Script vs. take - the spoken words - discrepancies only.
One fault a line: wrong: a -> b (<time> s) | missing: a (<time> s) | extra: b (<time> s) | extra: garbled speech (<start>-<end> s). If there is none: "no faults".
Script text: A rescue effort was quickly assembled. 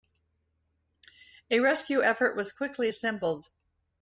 no faults